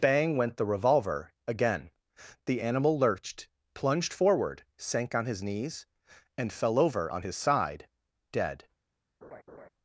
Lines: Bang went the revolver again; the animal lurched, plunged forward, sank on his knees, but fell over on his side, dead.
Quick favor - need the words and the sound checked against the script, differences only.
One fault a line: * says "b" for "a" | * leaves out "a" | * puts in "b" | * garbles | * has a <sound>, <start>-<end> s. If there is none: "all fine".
* says "and" for "but"
* has a laugh, 9.2-9.7 s